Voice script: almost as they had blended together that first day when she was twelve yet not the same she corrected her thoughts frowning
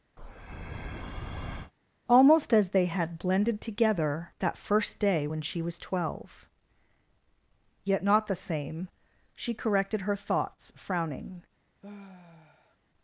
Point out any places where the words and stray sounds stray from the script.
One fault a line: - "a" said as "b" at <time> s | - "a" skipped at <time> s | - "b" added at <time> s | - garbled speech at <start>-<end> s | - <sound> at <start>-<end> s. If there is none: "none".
- breath at 0.2-1.7 s
- sigh at 11.8-12.8 s